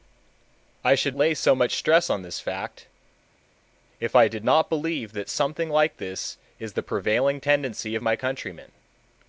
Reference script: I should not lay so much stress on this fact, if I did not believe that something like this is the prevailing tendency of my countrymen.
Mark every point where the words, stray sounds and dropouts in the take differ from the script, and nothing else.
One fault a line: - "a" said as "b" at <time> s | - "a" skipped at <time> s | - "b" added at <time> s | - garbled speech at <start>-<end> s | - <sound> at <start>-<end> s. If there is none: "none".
- "not" skipped at 1.1 s